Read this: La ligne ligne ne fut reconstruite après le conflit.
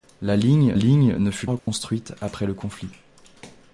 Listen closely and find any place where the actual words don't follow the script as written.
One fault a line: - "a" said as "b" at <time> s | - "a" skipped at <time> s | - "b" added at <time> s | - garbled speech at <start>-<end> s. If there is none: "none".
none